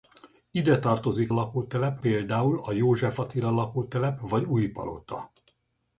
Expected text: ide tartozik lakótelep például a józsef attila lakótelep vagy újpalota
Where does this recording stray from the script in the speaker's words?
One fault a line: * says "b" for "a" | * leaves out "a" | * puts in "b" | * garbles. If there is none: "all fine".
all fine